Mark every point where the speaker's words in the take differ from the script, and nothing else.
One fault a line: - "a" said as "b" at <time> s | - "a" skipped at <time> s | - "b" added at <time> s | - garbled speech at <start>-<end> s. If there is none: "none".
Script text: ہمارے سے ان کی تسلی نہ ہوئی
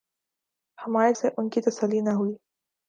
none